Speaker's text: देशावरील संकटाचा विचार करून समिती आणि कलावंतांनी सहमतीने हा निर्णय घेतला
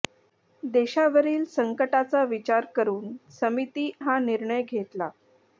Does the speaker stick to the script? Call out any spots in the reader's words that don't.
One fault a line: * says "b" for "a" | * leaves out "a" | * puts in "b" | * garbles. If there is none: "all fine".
* leaves out "आणि कलावंतांनी सहमतीने"